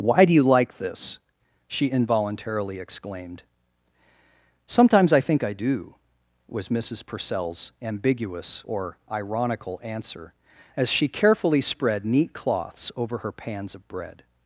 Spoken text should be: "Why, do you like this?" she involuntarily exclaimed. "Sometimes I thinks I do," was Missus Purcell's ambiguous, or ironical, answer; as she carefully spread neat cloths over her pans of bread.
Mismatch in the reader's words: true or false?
true